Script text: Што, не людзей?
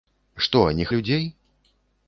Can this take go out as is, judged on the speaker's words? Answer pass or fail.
pass